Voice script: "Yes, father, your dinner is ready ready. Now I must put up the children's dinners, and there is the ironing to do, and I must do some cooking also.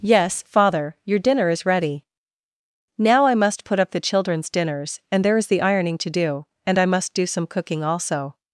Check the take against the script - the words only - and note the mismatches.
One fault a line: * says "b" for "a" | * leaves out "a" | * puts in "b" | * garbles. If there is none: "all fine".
* leaves out "ready"